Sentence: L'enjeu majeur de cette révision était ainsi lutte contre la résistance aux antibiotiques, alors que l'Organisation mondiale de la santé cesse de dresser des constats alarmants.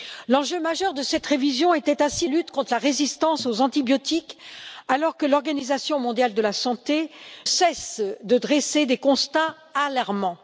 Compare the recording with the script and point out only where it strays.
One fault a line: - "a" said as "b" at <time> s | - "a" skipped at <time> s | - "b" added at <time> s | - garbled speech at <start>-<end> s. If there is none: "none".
none